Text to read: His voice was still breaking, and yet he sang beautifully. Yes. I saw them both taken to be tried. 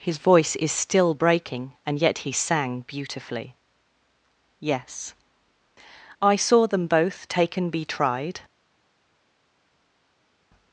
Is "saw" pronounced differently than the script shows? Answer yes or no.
no